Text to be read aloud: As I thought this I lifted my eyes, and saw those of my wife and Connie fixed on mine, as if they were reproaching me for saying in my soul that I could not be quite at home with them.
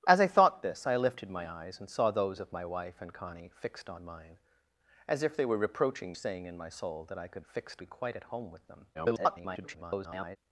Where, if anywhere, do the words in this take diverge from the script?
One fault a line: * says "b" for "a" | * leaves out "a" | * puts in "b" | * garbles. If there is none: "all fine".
* leaves out "me for"
* says "fixed" for "not"
* garbles